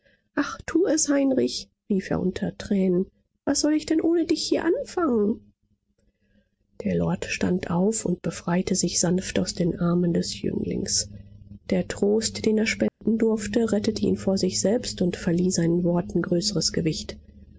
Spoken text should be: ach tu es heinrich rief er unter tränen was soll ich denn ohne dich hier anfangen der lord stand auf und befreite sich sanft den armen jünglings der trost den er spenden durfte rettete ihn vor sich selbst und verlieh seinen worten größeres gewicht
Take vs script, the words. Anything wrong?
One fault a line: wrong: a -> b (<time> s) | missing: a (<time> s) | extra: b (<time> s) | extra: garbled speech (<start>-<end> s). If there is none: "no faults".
extra: aus (9.4 s)
extra: des (10.1 s)